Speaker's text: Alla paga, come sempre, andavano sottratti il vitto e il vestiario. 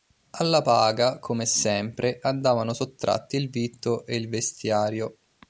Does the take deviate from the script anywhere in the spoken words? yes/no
no